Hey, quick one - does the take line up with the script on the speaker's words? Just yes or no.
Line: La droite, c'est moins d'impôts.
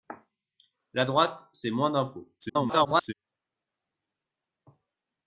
no